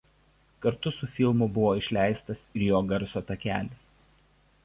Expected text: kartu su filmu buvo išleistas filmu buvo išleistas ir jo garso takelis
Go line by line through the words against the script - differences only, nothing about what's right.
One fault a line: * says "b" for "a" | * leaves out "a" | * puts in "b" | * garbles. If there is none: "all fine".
* leaves out "filmu buvo išleistas"